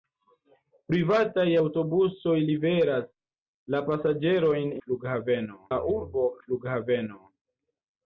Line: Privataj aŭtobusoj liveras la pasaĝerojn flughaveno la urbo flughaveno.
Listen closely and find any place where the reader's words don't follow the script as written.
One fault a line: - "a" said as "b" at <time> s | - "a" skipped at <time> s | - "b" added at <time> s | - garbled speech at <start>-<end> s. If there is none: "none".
none